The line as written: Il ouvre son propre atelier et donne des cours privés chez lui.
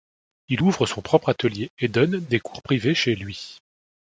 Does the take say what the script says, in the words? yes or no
yes